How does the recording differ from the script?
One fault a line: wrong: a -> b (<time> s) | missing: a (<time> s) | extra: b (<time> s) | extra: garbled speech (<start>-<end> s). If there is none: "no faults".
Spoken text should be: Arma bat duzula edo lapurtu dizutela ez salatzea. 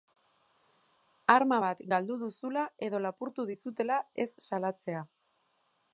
extra: galdu (1.9 s)